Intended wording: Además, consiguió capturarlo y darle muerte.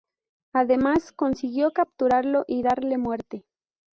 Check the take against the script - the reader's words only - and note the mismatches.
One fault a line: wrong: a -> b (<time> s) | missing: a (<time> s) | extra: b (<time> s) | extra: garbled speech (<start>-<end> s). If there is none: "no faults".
no faults